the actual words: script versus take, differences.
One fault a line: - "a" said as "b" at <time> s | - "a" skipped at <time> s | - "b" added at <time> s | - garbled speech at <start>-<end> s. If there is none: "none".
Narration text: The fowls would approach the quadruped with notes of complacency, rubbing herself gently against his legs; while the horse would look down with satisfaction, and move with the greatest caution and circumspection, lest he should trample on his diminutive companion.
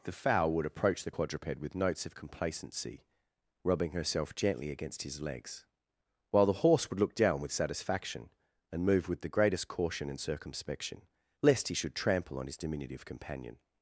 - "fowls" said as "fowl" at 0.1 s